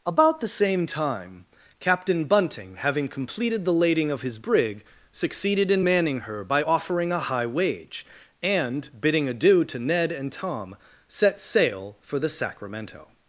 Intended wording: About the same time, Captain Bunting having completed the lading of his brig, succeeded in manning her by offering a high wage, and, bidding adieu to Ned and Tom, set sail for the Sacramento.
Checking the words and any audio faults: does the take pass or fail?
pass